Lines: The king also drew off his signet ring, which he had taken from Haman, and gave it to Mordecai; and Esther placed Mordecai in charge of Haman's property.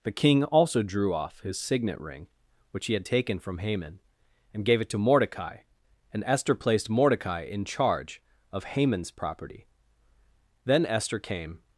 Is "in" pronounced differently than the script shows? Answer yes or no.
no